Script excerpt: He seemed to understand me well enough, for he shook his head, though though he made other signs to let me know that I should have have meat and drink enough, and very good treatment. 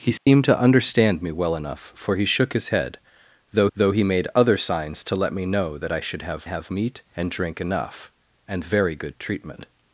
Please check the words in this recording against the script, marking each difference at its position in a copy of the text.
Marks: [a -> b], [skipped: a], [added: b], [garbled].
He seemed to understand me well enough, for he shook his head, though though he made other signs to let me know that I should have have meat and drink enough, and very good treatment.